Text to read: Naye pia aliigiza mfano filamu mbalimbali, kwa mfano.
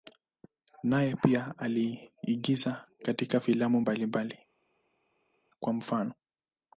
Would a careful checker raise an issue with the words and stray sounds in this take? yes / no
yes